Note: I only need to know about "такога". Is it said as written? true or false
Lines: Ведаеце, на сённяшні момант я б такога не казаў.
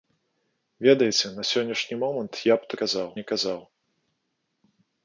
false